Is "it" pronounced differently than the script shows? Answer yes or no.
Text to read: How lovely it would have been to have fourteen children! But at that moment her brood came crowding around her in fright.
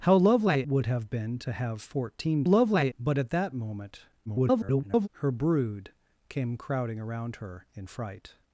yes